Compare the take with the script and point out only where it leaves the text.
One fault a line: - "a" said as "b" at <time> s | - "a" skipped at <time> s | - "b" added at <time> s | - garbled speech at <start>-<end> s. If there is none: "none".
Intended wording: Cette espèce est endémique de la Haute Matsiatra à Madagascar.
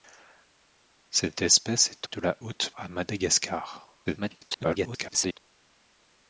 - "endémique" skipped at 2.1 s
- "Matsiatra" skipped at 2.7 s
- garbled speech at 4.0-5.4 s